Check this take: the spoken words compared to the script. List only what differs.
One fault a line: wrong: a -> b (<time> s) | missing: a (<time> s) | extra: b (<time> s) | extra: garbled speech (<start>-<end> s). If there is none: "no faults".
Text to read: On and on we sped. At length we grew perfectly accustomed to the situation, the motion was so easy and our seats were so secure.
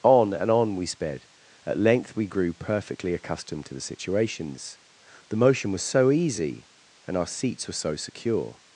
wrong: situation -> situations (3.8 s)